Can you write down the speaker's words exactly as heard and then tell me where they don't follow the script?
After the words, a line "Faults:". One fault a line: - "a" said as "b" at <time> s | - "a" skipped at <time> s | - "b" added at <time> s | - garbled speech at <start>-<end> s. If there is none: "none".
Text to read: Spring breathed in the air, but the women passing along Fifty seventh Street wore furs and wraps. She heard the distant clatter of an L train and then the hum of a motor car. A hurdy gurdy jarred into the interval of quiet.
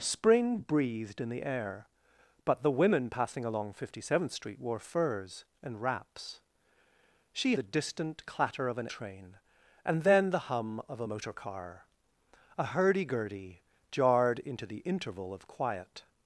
Spring breathed in the air, but the women passing along Fifty seventh Street wore furs and wraps. She the distant clatter of an Train and then the hum of a motor car. A hurdy gurdy jarred into the interval of quiet.
Faults:
- "heard" skipped at 7.5 s
- "L" skipped at 8.9 s